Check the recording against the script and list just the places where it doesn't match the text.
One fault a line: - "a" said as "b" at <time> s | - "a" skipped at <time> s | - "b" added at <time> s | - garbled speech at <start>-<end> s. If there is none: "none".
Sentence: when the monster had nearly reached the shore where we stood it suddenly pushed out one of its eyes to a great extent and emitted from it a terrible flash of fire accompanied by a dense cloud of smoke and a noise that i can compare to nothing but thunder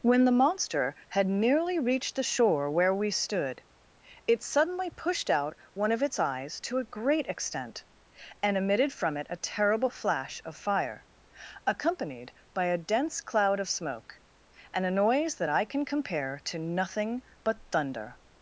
none